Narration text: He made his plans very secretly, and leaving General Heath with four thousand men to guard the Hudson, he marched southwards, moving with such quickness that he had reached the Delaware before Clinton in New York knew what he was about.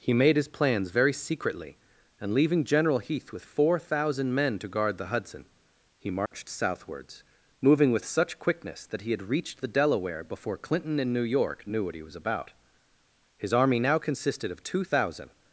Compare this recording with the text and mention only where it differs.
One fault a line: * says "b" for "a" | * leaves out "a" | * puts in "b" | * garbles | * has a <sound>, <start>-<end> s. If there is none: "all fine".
* has a dropout, 6.3-6.3 s
* puts in "His army now consisted of two thousand"